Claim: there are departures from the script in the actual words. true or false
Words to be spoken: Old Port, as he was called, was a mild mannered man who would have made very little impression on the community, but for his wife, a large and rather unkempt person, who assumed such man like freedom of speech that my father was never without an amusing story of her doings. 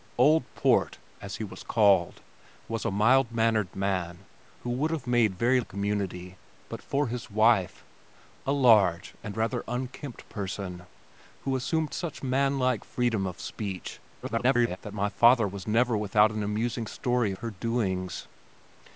true